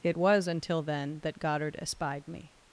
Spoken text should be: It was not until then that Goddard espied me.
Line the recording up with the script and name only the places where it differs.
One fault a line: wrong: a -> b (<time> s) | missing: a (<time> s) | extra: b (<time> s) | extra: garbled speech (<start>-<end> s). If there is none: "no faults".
missing: not (0.5 s)